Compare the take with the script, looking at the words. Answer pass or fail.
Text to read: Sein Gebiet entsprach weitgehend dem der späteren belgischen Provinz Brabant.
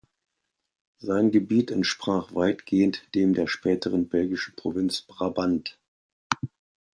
pass